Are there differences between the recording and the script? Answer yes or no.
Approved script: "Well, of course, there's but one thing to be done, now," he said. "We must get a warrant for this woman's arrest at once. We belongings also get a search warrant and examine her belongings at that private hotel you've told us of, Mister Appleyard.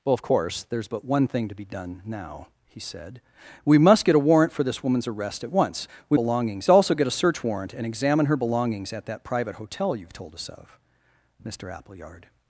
no